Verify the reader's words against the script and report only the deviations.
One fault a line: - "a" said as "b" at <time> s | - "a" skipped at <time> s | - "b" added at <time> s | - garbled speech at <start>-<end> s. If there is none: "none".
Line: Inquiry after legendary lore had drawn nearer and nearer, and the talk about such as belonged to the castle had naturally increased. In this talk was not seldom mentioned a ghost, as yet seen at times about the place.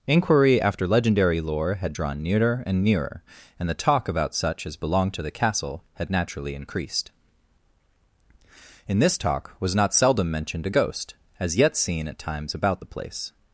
none